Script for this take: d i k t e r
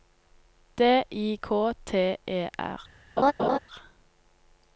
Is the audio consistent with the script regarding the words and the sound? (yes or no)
no